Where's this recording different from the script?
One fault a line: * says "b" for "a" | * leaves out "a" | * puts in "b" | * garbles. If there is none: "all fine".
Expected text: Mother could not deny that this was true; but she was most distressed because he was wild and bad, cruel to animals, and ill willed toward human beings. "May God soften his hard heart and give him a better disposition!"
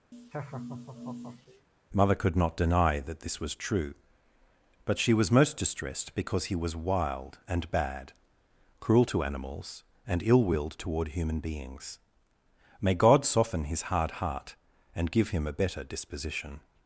all fine